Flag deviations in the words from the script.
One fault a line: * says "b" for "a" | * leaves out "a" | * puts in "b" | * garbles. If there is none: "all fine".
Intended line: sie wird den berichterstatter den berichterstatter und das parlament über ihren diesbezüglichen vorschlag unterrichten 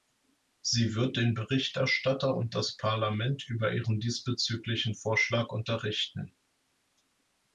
* leaves out "den berichterstatter"